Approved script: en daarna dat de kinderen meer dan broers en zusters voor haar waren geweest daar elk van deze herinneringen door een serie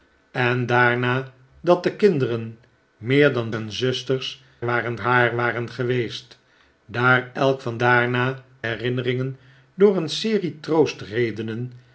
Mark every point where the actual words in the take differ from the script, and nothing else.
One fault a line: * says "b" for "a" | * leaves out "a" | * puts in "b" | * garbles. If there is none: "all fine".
* leaves out "broers"
* says "waren" for "voor"
* says "daarna" for "deze"